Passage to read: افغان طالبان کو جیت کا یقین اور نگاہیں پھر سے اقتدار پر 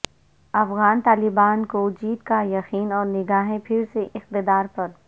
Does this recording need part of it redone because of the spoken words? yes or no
no